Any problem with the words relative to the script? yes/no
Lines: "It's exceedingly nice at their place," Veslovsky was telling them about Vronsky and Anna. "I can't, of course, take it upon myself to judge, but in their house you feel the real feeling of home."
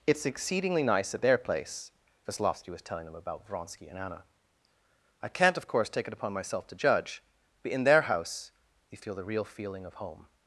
no